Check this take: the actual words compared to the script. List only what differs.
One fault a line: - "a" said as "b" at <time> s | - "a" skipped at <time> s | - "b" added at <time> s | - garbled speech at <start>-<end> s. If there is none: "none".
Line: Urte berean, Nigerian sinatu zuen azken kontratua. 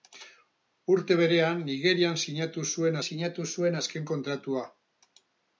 - "sinatu zuen" added at 3.1 s